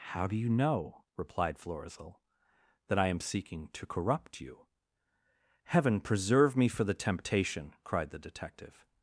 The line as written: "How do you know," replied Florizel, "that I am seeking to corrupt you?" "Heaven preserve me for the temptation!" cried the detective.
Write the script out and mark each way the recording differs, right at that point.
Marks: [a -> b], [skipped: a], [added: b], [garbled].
"How do you know," replied Florizel, "that I am seeking to corrupt you?" "Heaven preserve me for the temptation!" cried the detective.